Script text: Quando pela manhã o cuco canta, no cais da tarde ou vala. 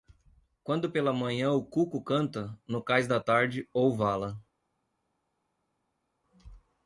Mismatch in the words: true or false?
false